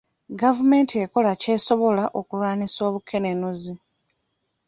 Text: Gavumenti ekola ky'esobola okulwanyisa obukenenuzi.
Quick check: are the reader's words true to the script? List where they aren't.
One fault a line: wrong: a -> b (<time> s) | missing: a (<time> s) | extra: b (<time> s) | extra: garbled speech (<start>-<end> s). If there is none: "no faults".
no faults